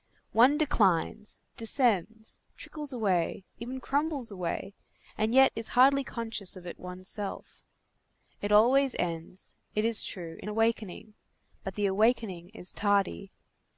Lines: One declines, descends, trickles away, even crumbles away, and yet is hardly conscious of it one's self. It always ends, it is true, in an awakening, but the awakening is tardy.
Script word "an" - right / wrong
wrong